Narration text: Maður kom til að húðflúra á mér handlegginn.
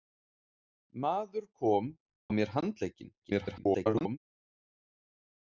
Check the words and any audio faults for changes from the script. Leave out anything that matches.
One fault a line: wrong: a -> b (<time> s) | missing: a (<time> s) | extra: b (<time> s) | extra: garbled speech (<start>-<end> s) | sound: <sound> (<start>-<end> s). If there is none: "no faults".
missing: til að húðflúra (1.9 s)
extra: garbled speech (3.2-4.2 s)